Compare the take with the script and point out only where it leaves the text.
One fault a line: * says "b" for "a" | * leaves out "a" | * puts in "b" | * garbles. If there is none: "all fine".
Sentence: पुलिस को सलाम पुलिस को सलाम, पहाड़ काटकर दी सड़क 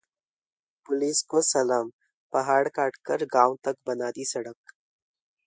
* says "पहाड़ काटकर गांव तक बना" for "पुलिस को सलाम पहाड़ काटकर"